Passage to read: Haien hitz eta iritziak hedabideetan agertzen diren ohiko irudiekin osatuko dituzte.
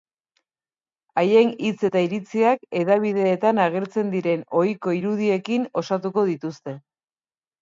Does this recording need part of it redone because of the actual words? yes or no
no